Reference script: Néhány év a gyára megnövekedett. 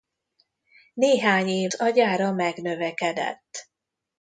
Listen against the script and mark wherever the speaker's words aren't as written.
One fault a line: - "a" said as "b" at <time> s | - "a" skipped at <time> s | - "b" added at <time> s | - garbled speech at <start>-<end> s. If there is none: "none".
none